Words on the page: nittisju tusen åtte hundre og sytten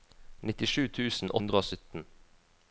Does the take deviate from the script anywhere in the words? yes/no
yes